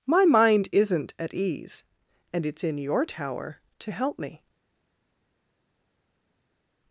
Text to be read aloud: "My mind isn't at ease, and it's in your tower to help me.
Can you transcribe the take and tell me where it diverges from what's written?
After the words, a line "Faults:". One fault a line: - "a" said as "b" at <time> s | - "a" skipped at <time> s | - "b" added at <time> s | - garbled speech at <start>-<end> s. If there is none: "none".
"My mind isn't at ease, and it's in your tower to help me.
Faults:
none